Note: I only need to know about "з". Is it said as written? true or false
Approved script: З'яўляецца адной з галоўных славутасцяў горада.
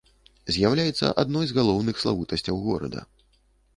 true